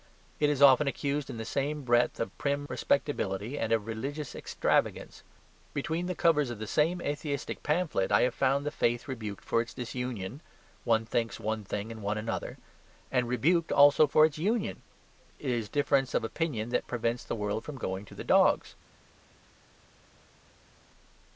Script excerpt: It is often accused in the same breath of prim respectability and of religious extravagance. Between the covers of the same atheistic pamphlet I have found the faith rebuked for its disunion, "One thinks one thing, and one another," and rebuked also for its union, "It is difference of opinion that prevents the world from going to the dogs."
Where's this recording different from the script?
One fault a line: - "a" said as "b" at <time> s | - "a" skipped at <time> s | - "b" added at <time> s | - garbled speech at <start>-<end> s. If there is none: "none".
none